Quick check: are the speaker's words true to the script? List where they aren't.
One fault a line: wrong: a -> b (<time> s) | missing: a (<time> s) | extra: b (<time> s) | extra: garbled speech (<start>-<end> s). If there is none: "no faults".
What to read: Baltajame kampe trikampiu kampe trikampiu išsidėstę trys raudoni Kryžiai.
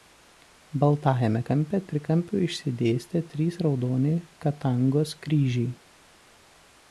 missing: kampe trikampiu (2.4 s)
extra: Katangos (4.5 s)